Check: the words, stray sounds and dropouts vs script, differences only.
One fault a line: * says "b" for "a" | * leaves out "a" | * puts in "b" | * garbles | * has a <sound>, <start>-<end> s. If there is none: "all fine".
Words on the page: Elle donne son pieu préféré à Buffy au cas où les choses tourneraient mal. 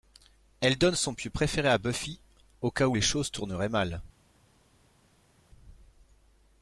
all fine